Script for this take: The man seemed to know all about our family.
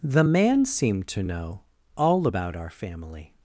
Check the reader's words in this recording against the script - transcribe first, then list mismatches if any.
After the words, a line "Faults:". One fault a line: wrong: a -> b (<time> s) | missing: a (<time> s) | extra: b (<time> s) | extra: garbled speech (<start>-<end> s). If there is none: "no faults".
The man seemed to know all about our family.
Faults:
no faults